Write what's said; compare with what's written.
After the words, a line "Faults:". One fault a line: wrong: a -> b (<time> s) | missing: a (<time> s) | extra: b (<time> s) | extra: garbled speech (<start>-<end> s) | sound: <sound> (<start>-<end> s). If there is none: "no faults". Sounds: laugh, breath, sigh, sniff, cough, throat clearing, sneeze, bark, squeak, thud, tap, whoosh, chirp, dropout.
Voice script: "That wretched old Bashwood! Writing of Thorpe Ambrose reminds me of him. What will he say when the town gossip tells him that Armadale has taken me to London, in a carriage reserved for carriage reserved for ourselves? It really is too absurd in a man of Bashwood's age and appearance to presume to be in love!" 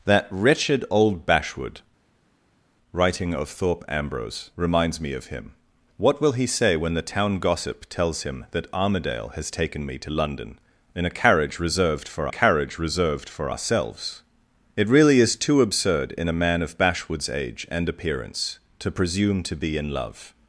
"That wretched old Bashwood! Writing of Thorpe Ambrose reminds me of him. What will he say when the town gossip tells him that Armadale has taken me to London, in a carriage reserved for carriage reserved for ourselves? It really is too absurd in a man of Bashwood's age and appearance to presume to be in love!"
Faults:
no faults